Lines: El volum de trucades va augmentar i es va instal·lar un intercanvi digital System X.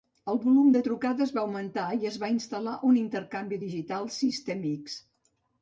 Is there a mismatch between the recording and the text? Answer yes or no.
no